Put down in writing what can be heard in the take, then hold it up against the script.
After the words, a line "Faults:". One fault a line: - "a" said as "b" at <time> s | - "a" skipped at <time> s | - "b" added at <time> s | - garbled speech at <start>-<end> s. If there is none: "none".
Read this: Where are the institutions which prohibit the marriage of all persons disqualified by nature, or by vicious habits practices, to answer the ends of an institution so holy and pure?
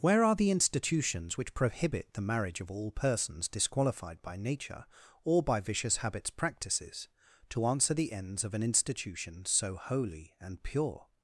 Where are the institutions which prohibit the marriage of all persons disqualified by nature, or by vicious habits practices, to answer the ends of an institution so holy and pure?
Faults:
none